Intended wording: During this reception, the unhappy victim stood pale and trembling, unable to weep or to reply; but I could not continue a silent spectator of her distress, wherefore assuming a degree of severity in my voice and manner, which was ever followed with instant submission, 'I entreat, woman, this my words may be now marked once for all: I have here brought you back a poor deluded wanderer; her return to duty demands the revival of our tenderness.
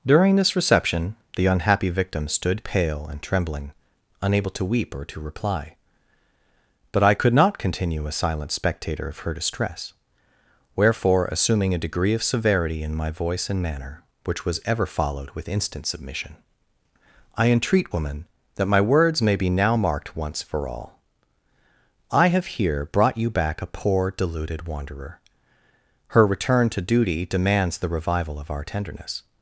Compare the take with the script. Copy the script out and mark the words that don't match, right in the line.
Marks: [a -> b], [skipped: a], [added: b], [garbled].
During this reception, the unhappy victim stood pale and trembling, unable to weep or to reply; but I could not continue a silent spectator of her distress, wherefore assuming a degree of severity in my voice and manner, which was ever followed with instant submission, 'I entreat, woman, [this -> that] my words may be now marked once for all: I have here brought you back a poor deluded wanderer; her return to duty demands the revival of our tenderness.